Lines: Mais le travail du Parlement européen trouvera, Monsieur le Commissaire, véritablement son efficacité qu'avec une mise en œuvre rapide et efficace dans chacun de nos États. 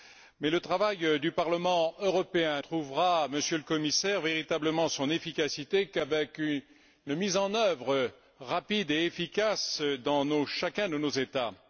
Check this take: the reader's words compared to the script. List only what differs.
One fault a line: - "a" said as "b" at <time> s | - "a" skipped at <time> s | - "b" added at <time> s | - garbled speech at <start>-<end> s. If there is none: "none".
none